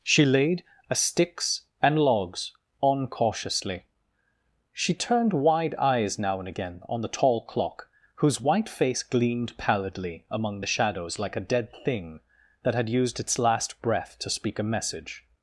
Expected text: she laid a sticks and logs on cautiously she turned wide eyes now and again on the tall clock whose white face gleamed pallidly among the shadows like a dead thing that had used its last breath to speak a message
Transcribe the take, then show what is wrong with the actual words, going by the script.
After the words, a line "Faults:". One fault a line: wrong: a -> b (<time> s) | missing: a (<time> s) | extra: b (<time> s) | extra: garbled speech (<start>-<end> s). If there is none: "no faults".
she laid a sticks and logs on cautiously she turned wide eyes now and again on the tall clock whose white face gleamed pallidly among the shadows like a dead thing that had used its last breath to speak a message
Faults:
no faults